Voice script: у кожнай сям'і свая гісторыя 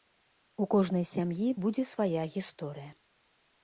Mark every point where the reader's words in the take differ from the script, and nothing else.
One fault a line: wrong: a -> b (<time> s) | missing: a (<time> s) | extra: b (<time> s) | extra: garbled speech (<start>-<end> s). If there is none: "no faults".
extra: будзе (1.6 s)